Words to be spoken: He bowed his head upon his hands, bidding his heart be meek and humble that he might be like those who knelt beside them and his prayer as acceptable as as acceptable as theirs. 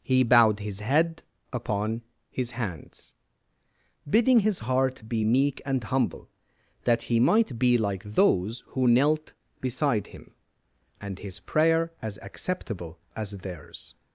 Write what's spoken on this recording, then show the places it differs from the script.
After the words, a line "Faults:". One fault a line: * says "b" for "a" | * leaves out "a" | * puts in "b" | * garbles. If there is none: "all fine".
He bowed his head upon his hands, bidding his heart be meek and humble that he might be like those who knelt beside him and his prayer as acceptable as theirs.
Faults:
* says "him" for "them"
* leaves out "as acceptable as"